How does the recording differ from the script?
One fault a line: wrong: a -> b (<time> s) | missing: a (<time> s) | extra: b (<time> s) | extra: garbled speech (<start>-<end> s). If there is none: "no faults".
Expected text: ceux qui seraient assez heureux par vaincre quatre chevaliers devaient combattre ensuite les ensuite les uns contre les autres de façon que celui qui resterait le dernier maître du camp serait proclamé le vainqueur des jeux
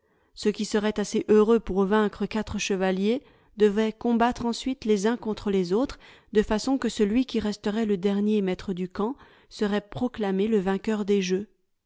wrong: par -> pour (1.6 s)
missing: ensuite les (5.1 s)